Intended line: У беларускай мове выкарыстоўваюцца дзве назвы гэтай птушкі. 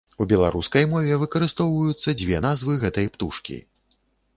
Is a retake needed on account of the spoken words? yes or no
no